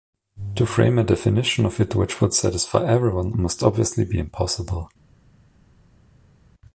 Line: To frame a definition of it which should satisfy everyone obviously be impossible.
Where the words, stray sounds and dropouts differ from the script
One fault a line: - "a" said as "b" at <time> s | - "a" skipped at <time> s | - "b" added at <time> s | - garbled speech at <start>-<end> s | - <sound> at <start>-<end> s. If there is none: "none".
- "should" said as "would" at 2.2 s
- "must" added at 3.4 s